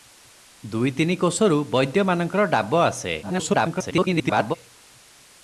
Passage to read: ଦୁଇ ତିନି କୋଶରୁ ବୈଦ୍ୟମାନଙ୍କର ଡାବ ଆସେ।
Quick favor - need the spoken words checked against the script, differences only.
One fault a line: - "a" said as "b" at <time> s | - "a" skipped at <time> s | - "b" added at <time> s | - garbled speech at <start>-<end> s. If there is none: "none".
- garbled speech at 3.2-4.6 s